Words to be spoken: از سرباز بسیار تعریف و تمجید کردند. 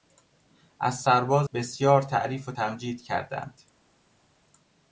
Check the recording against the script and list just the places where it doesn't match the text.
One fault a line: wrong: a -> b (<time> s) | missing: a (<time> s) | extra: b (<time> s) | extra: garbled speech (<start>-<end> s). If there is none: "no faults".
no faults